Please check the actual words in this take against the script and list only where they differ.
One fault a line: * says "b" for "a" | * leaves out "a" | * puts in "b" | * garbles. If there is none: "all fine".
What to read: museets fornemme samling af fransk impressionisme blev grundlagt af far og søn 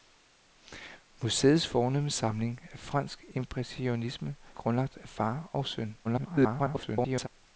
* leaves out "blev"
* garbles